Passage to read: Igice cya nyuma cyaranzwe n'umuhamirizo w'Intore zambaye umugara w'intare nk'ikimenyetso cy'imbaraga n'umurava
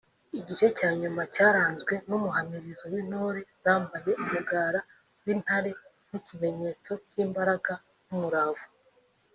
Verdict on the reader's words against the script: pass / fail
pass